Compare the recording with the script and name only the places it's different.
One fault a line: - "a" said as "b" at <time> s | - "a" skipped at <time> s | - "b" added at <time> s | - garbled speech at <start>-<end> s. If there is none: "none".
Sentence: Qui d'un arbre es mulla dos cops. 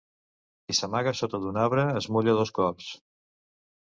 - "s'amaga sota" added at 0.8 s